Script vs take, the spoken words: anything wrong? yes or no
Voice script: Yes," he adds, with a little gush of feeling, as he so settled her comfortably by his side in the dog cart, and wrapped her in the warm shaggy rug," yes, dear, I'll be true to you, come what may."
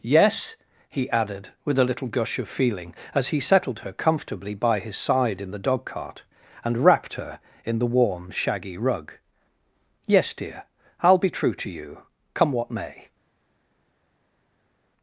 yes